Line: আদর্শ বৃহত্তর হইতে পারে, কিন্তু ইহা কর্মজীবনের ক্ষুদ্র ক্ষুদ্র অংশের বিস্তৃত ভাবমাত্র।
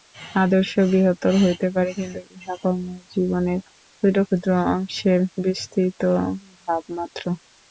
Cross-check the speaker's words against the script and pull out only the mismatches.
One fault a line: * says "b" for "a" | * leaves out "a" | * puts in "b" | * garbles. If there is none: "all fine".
all fine